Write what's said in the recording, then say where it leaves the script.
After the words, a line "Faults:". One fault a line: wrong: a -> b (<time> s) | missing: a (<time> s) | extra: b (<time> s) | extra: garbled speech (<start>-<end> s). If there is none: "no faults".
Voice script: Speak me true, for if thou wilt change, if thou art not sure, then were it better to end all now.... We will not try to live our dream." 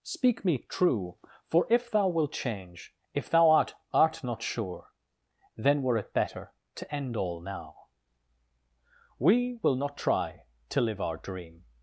Speak me true, for if thou wilt change, if thou art art not sure, then were it better to end all now.... We will not try to live our dream."
Faults:
extra: art (3.9 s)